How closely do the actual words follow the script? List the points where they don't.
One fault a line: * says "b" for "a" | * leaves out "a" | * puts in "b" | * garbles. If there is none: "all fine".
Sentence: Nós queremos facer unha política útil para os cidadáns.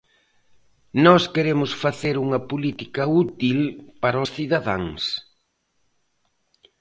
all fine